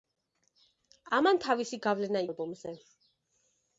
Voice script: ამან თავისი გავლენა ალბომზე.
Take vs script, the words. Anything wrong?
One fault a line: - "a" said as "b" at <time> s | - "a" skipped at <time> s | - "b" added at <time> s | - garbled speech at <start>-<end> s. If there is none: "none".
none